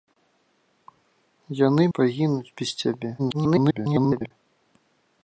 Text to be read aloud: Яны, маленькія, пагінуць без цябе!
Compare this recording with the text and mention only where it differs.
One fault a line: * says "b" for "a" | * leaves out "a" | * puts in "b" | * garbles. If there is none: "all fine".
* leaves out "маленькія"
* garbles